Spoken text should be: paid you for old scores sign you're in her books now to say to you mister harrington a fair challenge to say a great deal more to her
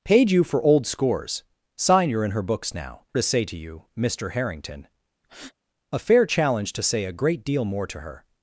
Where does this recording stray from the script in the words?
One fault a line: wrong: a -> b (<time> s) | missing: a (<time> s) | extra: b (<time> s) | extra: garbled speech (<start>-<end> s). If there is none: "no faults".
no faults